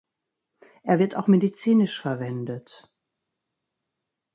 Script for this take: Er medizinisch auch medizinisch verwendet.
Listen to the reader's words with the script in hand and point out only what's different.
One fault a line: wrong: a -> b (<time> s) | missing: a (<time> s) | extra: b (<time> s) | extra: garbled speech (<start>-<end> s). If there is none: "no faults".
wrong: medizinisch -> wird (1.0 s)